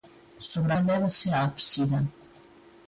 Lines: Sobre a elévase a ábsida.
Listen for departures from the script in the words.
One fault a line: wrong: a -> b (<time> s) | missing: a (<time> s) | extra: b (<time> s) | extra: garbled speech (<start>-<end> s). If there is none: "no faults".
no faults